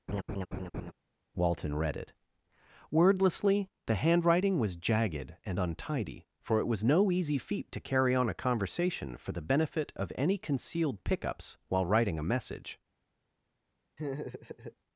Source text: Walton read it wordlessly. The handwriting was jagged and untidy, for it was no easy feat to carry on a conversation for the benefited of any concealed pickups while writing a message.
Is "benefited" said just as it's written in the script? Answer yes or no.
no